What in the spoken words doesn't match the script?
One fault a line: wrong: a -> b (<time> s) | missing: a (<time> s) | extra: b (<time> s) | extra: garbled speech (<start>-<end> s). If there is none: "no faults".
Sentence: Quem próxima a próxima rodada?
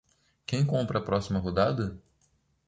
wrong: próxima -> compra (0.7 s)